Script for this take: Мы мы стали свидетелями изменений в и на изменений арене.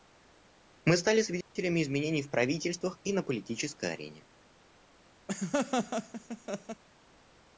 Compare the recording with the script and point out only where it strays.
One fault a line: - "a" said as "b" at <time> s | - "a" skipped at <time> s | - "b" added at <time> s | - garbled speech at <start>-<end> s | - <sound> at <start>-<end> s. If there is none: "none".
- "мы" skipped at 1.0 s
- dropout at 1.4-1.6 s
- "правительствах" added at 2.3 s
- "изменений" said as "политической" at 3.2 s
- laugh at 5.3-6.8 s